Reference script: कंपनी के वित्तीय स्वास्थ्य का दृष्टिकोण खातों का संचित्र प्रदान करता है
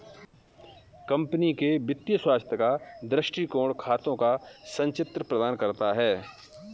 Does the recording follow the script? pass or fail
pass